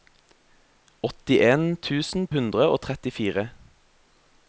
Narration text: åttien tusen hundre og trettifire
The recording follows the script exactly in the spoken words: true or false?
true